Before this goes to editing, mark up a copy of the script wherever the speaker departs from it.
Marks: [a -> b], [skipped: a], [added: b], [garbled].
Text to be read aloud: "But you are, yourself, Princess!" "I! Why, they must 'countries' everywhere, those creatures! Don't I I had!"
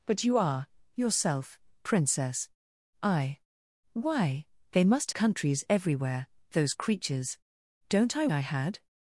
"But you are, yourself, Princess!" "I! Why, they must 'countries' everywhere, those creatures! Don't I I had!"